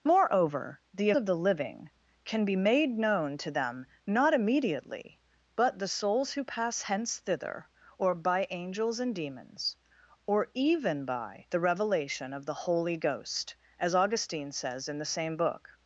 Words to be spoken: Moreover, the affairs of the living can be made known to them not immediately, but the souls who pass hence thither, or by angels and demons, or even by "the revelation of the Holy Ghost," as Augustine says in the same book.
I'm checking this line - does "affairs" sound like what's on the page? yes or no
no